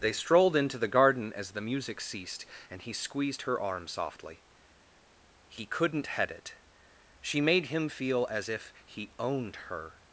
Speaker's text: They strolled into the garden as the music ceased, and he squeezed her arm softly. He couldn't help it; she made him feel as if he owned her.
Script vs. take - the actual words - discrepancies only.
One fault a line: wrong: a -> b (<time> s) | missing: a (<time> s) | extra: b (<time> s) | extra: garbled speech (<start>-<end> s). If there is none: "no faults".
wrong: help -> head (6.1 s)